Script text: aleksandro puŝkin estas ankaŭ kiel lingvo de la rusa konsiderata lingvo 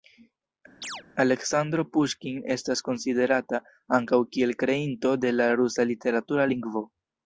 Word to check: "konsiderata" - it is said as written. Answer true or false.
false